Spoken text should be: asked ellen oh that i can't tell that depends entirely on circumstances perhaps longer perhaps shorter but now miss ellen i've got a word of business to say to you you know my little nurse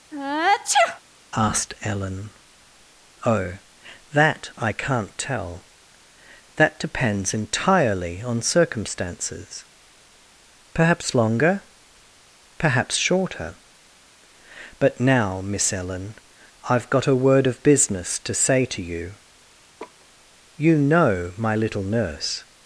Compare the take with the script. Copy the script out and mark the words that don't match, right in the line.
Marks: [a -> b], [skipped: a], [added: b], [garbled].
asked ellen oh that i can't tell that depends entirely on circumstances perhaps longer perhaps shorter but now miss ellen i've got a word of business to say to you you know my little nurse